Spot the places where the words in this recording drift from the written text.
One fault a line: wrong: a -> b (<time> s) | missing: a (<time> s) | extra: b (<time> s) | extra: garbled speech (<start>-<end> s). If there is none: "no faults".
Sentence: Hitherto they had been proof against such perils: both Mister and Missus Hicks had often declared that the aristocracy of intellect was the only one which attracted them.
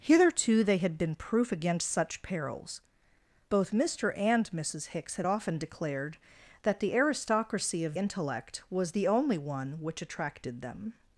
no faults